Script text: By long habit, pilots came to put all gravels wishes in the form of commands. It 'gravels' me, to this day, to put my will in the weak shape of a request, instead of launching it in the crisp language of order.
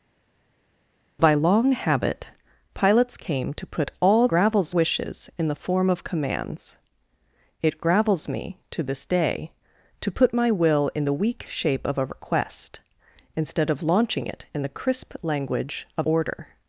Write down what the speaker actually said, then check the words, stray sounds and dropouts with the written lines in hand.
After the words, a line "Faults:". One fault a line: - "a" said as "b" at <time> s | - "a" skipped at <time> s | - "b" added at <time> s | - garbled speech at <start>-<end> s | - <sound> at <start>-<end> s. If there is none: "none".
By long habit, pilots came to put all gravels wishes in the form of commands. It 'gravels' me, to this day, to put my will in the weak shape of a request, instead of launching it in the crisp language of order.
Faults:
none